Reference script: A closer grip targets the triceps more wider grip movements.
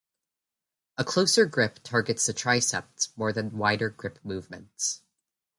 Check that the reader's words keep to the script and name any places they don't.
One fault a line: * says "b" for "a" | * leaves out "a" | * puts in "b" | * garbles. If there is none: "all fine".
* puts in "than"